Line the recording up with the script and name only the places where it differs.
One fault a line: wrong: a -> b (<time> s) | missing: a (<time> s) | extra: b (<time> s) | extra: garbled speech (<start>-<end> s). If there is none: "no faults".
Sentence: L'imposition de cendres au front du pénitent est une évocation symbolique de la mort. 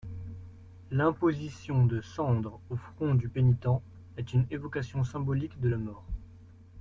no faults